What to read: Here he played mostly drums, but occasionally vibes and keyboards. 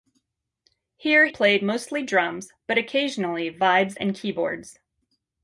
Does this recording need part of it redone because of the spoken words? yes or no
yes